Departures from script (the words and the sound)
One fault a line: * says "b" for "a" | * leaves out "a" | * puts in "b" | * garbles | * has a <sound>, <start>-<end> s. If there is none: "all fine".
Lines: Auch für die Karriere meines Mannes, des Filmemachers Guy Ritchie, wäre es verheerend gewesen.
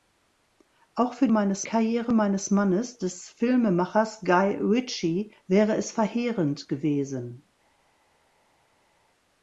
* says "meines" for "die"